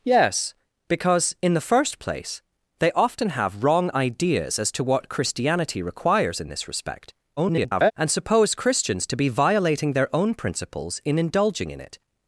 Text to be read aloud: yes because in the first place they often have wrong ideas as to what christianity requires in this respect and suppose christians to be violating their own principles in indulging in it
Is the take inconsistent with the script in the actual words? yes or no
yes